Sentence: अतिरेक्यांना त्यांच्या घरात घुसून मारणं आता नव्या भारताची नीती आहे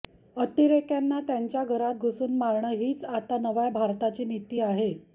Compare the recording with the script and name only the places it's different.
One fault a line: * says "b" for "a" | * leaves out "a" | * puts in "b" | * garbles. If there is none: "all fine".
* puts in "हीच"